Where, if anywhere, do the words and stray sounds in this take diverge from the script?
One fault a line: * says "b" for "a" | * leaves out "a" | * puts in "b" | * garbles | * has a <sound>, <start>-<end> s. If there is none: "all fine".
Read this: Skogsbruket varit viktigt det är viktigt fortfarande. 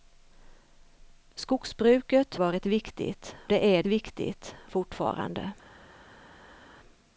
all fine